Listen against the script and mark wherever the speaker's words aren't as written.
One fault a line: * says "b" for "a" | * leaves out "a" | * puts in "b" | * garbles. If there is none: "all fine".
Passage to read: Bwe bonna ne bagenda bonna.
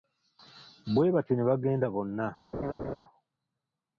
* says "batyo" for "bonna"